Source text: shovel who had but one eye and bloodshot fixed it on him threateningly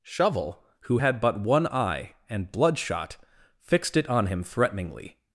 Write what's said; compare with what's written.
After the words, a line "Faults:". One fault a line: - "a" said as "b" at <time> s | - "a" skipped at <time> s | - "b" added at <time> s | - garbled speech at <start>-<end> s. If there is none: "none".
shovel who had but one eye and bloodshot fixed it on him threateningly
Faults:
none